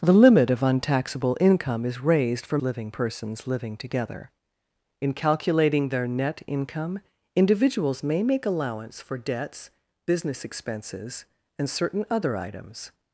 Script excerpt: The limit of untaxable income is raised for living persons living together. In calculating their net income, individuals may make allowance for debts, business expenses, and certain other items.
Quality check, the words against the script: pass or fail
pass